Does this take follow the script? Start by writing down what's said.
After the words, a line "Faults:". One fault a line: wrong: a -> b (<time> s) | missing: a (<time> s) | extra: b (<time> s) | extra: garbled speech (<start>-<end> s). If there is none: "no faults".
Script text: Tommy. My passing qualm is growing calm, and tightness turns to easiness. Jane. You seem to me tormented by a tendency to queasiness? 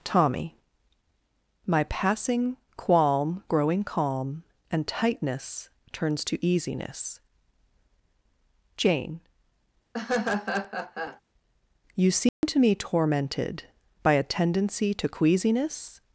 Tommy. My passing qualm growing calm, and tightness turns to easiness. Jane. You seem to me tormented by a tendency to queasiness?
Faults:
missing: is (3.4 s)